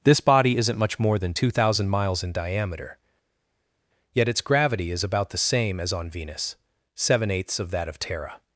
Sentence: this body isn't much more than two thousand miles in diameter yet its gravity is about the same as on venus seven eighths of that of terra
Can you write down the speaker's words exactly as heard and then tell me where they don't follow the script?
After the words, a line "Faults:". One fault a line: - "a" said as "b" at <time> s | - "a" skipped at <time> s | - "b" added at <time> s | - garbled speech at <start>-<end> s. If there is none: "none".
this body isn't much more than two thousand miles in diameter yet its gravity is about the same as on venus seven eighths of that of terra
Faults:
none